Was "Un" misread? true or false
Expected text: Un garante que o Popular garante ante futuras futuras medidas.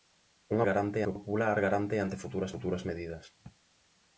false